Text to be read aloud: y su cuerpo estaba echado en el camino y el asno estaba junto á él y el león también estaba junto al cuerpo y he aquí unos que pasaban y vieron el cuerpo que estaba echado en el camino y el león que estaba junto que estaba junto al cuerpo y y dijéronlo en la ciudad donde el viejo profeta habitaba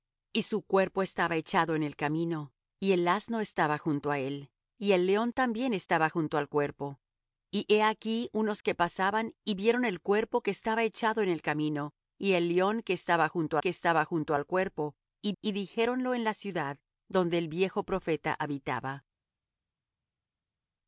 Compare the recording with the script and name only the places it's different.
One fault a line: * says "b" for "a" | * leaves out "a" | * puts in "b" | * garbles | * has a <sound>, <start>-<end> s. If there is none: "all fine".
all fine